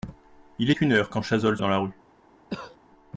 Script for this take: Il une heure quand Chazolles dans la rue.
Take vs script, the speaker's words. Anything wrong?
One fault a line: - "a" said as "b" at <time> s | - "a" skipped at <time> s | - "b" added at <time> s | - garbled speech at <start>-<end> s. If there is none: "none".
none